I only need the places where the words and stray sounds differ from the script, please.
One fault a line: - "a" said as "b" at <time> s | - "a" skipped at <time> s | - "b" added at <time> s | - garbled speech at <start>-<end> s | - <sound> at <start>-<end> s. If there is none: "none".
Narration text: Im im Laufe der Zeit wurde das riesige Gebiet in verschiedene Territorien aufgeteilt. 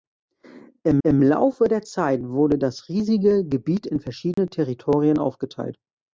- dropout at 4.3-4.4 s